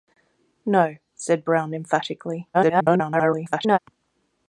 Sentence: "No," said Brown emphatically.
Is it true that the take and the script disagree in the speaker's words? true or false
true